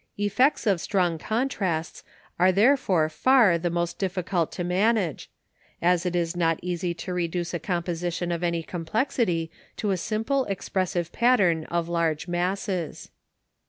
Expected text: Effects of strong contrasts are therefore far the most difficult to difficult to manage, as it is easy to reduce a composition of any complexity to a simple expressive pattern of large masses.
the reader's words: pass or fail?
fail